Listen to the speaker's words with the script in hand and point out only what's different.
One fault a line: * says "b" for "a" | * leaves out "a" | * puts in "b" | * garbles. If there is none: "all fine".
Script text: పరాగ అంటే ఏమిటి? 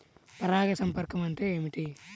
* puts in "సంపర్కం"